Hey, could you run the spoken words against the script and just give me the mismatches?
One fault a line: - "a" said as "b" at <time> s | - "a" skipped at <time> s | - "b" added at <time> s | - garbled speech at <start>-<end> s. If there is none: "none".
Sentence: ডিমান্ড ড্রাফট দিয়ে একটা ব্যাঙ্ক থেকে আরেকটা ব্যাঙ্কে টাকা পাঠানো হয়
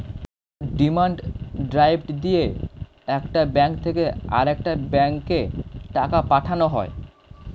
none